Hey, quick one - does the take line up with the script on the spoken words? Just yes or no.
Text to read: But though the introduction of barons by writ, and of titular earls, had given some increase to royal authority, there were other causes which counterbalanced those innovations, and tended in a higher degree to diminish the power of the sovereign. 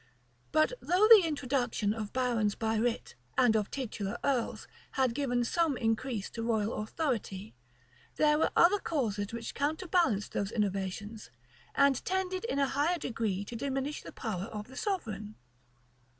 yes